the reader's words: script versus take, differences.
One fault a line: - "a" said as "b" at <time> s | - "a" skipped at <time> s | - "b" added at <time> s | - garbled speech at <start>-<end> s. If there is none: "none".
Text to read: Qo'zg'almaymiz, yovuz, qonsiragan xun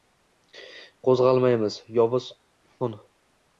- "qonsiragan" skipped at 2.3 s